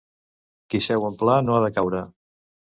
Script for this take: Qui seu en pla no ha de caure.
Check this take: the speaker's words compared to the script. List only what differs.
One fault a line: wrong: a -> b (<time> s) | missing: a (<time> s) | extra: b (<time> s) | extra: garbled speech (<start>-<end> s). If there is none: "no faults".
no faults